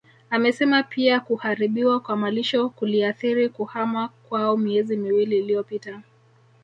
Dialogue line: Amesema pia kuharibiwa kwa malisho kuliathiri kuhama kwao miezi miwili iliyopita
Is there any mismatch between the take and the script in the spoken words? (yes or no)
no